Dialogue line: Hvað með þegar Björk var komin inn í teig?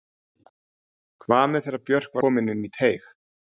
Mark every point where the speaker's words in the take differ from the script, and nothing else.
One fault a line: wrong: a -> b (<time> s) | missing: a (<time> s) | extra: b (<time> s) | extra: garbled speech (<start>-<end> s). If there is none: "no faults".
missing: var (2.2 s)